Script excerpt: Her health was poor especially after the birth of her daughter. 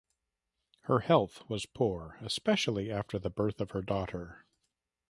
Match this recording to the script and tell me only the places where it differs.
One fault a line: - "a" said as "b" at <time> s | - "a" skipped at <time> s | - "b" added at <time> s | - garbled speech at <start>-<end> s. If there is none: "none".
none